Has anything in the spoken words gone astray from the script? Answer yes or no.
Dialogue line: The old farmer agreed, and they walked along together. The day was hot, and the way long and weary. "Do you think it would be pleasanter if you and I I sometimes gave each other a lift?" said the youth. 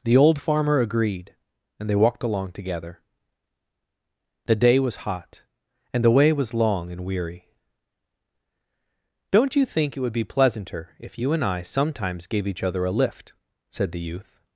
yes